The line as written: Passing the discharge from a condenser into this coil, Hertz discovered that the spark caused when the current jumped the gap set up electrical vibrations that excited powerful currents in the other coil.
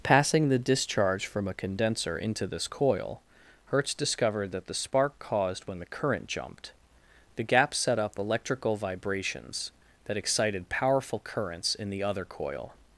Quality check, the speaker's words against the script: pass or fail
pass